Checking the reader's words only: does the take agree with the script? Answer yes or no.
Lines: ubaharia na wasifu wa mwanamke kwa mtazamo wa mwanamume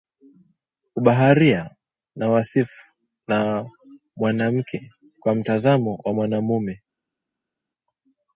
yes